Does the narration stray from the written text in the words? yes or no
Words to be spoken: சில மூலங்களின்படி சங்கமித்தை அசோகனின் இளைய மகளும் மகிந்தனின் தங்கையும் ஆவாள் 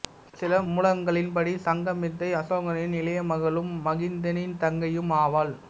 no